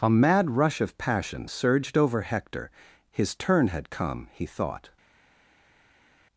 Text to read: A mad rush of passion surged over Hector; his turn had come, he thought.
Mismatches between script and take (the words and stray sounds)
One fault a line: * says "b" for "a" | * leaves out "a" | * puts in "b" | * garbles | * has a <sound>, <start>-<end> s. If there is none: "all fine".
all fine